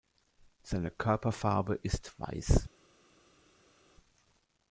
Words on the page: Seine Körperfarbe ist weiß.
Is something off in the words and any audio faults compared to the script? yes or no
no